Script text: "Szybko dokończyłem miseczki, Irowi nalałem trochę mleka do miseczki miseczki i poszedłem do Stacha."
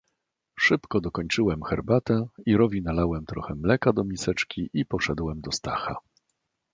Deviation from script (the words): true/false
true